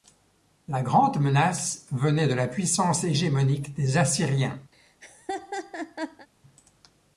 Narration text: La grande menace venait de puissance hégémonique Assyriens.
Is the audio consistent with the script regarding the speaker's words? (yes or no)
no